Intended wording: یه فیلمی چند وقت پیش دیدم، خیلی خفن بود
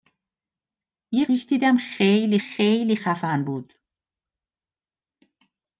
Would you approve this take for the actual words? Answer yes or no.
no